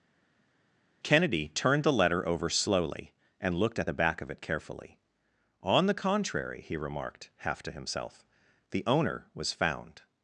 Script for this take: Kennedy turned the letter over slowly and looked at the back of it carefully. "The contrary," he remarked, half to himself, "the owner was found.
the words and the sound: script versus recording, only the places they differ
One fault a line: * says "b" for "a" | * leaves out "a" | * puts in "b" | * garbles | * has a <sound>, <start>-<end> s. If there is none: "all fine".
* puts in "On"